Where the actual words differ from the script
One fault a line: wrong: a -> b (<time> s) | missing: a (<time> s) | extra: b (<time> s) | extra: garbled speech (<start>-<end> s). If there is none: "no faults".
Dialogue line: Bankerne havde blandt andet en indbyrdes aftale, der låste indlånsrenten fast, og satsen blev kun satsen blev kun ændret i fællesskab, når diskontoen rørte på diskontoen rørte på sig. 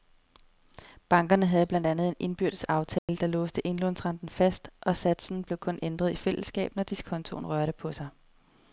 missing: satsen blev kun (5.8 s)
missing: diskontoen rørte på (7.9 s)